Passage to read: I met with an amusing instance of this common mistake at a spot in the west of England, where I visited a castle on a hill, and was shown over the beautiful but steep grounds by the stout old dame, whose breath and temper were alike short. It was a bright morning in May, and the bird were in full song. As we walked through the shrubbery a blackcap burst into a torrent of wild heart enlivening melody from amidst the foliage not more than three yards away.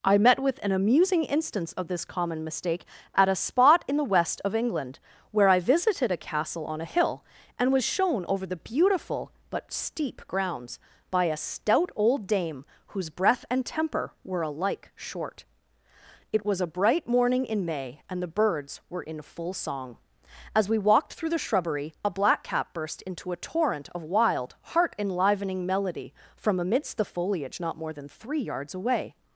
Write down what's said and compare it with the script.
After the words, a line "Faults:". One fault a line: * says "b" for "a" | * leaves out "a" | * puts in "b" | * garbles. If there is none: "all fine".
I met with an amusing instance of this common mistake at a spot in the west of England, where I visited a castle on a hill, and was shown over the beautiful but steep grounds by a stout old dame, whose breath and temper were alike short. It was a bright morning in May, and the birds were in full song. As we walked through the shrubbery a blackcap burst into a torrent of wild heart enlivening melody from amidst the foliage not more than three yards away.
Faults:
* says "a" for "the"
* says "birds" for "bird"